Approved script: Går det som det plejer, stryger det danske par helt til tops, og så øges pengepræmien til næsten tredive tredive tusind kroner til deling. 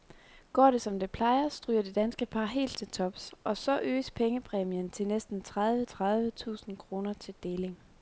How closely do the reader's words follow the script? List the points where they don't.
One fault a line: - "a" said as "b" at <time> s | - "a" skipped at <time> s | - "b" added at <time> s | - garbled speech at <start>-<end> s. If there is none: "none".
none